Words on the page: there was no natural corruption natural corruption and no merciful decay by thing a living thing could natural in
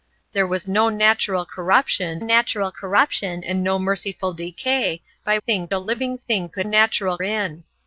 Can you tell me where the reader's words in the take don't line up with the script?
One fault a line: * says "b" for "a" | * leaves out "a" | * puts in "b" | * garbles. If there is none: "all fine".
all fine